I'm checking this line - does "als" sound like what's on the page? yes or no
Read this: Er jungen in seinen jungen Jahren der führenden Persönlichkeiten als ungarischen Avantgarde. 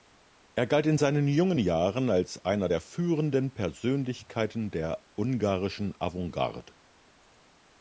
no